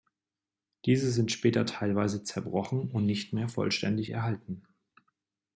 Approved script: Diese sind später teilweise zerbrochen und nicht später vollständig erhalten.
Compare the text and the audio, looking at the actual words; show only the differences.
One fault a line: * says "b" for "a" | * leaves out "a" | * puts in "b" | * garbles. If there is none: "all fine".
* says "mehr" for "später"